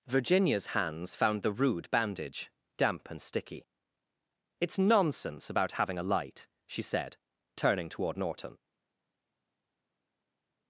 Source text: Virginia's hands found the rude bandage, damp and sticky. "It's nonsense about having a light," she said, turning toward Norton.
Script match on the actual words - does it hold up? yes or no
yes